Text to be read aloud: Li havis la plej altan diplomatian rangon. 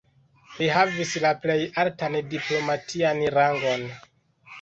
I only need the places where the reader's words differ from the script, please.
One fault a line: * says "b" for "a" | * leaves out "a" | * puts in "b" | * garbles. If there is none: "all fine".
all fine